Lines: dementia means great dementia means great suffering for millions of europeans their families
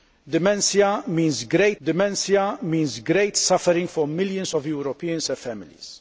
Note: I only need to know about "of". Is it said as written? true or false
true